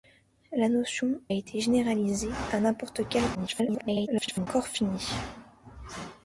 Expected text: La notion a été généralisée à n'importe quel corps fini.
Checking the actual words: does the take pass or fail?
fail